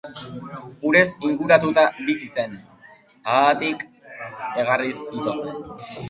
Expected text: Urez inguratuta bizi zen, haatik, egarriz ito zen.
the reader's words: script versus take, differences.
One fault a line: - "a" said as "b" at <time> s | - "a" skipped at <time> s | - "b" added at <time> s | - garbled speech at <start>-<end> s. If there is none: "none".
none